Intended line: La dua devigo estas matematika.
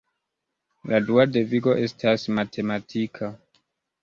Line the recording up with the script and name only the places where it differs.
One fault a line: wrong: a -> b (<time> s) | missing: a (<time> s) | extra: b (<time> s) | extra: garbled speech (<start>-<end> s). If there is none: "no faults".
no faults